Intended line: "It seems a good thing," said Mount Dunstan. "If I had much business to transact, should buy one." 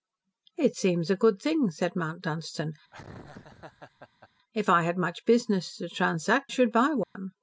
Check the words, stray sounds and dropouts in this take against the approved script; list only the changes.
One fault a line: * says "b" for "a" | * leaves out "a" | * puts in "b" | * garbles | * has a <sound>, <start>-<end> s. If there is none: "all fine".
* has a laugh, 2.9-4.3 s
* has a dropout, 7.0-7.2 s